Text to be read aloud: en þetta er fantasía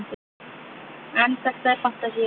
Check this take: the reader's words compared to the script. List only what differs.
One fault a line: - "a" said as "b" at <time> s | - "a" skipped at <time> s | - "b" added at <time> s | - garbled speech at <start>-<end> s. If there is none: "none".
none